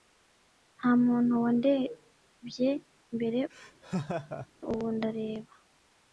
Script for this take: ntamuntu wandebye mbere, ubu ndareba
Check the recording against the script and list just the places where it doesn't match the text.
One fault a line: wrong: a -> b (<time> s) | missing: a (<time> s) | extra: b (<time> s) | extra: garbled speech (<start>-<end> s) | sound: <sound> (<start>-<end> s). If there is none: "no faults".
sound: laugh (3.5-4.5 s)